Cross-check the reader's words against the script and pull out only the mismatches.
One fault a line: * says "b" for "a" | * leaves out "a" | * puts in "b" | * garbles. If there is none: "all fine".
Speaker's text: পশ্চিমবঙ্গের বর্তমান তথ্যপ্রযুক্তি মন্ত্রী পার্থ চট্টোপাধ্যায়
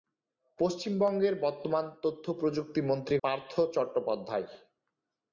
all fine